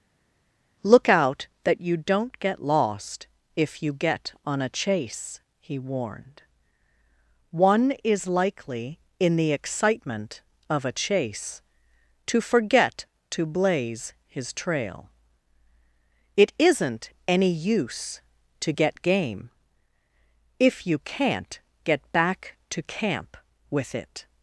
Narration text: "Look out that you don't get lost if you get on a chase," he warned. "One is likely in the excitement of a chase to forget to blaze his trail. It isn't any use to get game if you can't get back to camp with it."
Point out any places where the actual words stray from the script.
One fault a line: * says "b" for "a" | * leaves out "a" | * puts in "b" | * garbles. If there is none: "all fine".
all fine